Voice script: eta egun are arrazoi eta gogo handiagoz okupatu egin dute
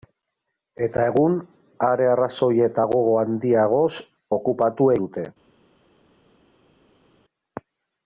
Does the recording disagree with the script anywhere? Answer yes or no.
yes